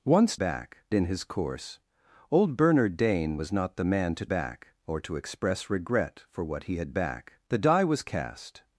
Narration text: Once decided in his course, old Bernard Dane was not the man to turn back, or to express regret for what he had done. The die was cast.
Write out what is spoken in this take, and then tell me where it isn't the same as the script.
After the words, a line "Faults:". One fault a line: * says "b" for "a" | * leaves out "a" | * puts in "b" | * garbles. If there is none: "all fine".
Once back in his course, old Bernard Dane was not the man to back, or to express regret for what he had back. The die was cast.
Faults:
* says "back" for "decided"
* leaves out "turn"
* says "back" for "done"